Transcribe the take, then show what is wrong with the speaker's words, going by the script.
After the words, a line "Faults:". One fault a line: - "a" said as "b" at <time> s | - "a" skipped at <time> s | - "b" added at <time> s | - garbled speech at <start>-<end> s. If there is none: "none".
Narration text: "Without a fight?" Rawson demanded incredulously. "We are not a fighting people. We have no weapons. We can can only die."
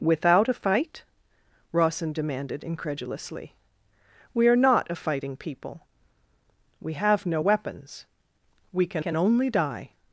"Without a fight?" Rawson demanded incredulously. "We are not a fighting people. We have no weapons. We can can only die."
Faults:
none